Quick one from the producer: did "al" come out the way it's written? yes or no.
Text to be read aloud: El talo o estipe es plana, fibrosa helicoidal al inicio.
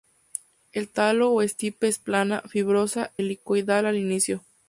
yes